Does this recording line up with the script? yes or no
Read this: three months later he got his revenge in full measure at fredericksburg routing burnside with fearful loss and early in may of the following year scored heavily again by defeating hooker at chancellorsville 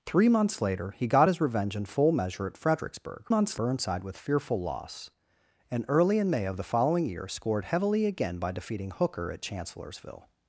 no